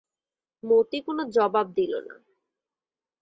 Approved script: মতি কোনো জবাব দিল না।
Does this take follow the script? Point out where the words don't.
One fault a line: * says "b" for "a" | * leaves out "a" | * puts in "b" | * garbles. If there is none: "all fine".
all fine